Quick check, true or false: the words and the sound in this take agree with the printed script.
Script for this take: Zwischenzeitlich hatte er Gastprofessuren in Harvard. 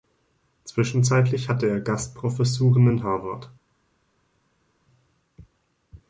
true